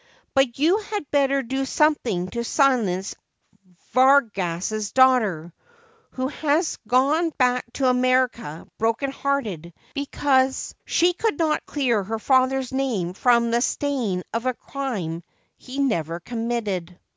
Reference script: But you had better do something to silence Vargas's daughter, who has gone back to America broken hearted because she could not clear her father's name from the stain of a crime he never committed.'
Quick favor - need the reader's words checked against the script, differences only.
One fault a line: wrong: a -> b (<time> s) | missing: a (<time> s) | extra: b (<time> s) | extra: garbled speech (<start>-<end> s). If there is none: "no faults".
no faults